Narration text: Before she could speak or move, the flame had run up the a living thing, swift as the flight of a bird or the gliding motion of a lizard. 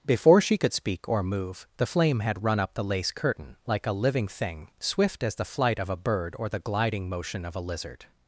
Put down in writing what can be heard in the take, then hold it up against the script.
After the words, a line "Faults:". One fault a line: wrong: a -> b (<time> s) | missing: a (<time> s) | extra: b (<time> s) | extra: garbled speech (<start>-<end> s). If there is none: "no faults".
Before she could speak or move, the flame had run up the lace curtain, like a living thing, swift as the flight of a bird or the gliding motion of a lizard.
Faults:
extra: lace curtain like (2.8 s)